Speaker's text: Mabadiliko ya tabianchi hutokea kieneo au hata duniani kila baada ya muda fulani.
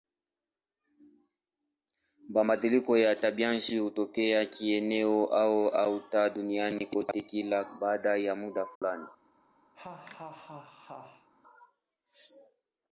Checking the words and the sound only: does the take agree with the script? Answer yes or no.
no